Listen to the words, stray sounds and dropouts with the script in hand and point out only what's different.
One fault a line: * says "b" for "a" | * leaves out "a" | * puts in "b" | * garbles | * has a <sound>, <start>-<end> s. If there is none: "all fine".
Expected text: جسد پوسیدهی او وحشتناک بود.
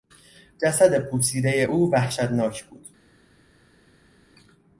all fine